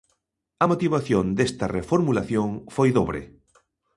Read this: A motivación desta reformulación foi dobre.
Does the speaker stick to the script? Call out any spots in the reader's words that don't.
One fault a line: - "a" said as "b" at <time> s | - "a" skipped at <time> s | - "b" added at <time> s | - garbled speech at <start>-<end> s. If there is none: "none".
none